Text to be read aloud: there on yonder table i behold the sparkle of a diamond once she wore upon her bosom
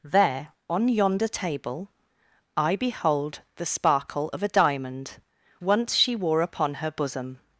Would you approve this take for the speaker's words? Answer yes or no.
yes